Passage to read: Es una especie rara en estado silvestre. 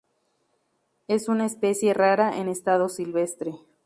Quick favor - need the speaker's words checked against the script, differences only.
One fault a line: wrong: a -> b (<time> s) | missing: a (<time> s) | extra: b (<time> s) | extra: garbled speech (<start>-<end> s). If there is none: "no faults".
no faults